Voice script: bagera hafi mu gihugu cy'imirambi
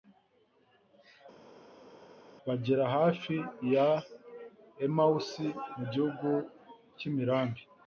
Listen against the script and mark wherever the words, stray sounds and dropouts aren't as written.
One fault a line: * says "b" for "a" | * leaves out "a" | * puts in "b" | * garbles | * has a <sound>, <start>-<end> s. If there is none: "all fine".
* puts in "ya emawusi"